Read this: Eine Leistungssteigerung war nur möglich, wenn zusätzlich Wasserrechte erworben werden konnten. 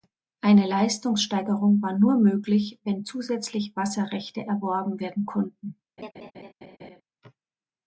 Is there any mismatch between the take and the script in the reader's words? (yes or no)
no